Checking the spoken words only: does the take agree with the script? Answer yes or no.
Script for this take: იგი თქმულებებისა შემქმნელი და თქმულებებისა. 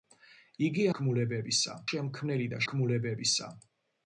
yes